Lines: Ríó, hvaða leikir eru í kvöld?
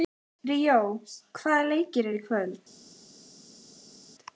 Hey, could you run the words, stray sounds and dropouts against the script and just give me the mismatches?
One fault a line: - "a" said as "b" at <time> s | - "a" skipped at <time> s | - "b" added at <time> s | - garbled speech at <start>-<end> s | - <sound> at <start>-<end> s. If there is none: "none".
none